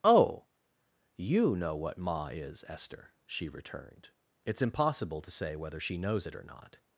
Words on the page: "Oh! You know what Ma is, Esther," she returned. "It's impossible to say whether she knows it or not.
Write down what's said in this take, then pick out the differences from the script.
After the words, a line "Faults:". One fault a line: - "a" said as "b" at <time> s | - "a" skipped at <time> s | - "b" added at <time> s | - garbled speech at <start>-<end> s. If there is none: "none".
"Oh! You know what Ma is, Esther," she returned. "It's impossible to say whether she knows it or not.
Faults:
none